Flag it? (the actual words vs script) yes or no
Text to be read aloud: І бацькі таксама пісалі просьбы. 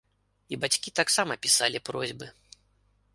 no